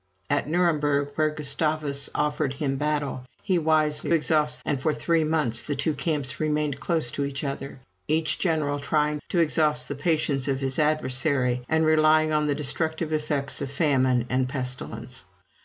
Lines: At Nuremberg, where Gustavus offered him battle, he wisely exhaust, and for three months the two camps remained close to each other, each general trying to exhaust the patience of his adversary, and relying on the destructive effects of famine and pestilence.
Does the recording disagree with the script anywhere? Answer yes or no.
no